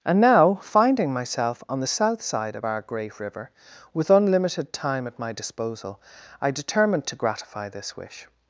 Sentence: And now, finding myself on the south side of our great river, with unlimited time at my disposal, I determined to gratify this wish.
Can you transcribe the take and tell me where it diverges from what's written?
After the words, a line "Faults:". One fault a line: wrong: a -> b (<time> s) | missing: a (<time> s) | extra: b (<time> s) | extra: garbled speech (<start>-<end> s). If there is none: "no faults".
And now, finding myself on the south side of our great river, with unlimited time at my disposal, I determined to gratify this wish.
Faults:
no faults